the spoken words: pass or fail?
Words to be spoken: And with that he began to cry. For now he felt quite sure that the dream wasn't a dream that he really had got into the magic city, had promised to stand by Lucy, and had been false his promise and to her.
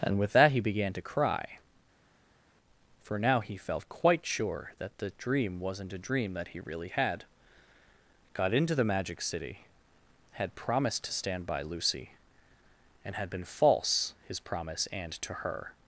pass